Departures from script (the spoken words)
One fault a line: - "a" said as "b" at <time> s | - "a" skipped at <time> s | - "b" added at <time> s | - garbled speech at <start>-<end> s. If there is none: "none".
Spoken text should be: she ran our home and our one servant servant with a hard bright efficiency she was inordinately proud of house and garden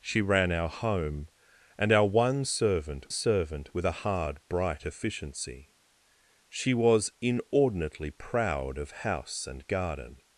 none